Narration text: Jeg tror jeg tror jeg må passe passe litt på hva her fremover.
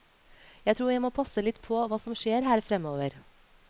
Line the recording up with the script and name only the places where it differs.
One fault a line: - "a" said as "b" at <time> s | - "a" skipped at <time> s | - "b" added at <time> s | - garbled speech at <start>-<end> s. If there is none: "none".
- "tror jeg" skipped at 1.0 s
- "passe" skipped at 1.4 s
- "som skjer" added at 2.0 s